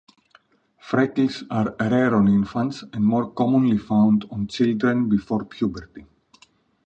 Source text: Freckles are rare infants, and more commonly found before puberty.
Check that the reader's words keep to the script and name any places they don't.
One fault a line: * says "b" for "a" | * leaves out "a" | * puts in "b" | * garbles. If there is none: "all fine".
* puts in "on"
* puts in "on children"